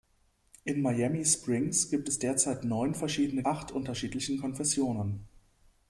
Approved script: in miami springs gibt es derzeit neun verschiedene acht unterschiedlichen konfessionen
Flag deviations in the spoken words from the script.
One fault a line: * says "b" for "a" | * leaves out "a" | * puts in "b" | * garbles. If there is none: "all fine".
all fine